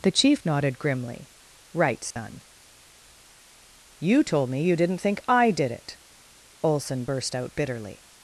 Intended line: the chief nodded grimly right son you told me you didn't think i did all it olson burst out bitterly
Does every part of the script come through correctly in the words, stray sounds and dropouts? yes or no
no